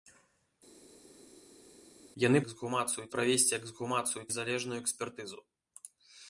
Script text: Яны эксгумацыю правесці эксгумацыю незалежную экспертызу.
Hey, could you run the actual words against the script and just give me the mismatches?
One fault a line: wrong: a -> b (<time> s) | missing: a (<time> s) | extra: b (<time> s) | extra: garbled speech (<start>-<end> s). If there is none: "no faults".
no faults